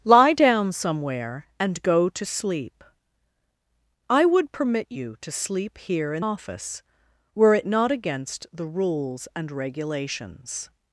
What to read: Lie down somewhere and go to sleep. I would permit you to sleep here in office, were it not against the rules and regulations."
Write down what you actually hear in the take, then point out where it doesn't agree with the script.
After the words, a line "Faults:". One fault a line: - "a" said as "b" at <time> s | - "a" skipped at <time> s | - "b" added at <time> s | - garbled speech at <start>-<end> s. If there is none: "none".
Lie down somewhere and go to sleep. I would permit you to sleep here in office, were it not against the rules and regulations."
Faults:
none